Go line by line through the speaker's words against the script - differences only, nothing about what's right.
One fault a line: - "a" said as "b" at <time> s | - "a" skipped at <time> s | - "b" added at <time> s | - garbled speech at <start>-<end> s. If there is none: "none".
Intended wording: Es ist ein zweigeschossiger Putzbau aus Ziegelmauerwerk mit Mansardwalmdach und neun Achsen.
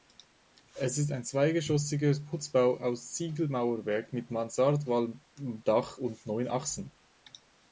none